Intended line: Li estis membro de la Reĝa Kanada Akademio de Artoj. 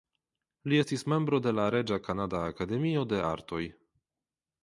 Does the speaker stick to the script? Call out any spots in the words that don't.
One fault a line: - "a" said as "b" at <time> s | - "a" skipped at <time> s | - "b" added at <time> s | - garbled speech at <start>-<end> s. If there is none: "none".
none